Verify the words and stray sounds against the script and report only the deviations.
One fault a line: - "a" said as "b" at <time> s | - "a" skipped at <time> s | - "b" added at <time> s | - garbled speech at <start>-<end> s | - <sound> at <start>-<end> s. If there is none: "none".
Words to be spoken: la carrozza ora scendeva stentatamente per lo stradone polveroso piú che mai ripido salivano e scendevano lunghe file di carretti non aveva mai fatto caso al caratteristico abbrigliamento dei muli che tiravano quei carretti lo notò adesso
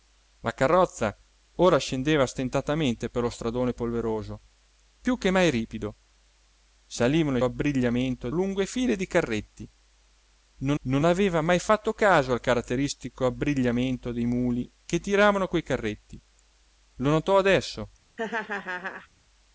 - "scendevano" said as "abbrigliamento" at 7.4 s
- "non" added at 10.8 s
- laugh at 18.2-19.1 s